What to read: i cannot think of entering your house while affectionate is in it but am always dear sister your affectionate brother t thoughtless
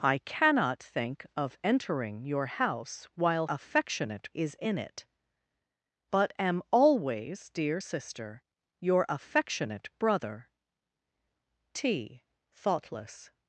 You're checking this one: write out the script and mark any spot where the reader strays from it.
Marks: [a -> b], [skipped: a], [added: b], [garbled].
i cannot think of entering your house while affectionate is in it but am always dear sister your affectionate brother t thoughtless